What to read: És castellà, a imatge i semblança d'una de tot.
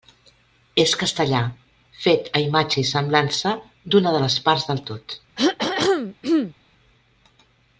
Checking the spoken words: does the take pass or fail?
fail